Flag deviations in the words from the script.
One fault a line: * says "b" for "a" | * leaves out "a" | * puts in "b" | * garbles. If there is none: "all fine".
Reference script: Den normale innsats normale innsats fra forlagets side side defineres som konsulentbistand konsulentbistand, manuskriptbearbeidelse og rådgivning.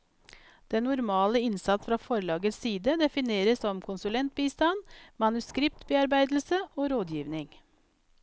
* leaves out "normale innsats"
* leaves out "side"
* leaves out "konsulentbistand"